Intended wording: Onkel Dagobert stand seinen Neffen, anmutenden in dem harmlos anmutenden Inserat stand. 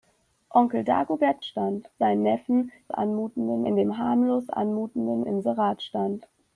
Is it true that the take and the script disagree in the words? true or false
false